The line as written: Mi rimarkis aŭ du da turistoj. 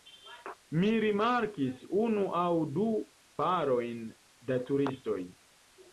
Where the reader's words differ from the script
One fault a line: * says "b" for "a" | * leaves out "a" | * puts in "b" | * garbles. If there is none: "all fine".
* puts in "unu"
* puts in "parojn"